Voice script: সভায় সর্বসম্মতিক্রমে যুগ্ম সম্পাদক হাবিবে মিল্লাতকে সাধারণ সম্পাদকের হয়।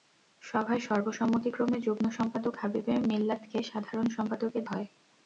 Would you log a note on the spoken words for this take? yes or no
no